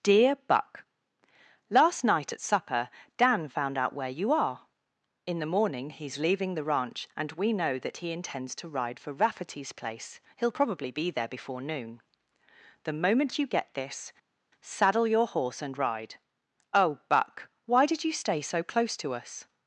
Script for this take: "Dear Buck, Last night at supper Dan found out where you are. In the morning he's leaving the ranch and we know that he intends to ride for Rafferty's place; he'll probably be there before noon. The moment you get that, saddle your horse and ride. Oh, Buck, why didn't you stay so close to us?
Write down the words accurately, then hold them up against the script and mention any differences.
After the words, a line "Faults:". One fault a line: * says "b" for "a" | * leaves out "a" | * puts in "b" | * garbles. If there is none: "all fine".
"Dear Buck, Last night at supper Dan found out where you are. In the morning he's leaving the ranch and we know that he intends to ride for Rafferty's place; he'll probably be there before noon. The moment you get this, saddle your horse and ride. Oh, Buck, why did you stay so close to us?
Faults:
* says "this" for "that"
* says "did" for "didn't"